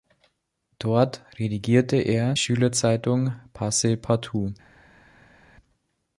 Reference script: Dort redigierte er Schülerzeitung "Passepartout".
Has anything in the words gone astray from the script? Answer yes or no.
no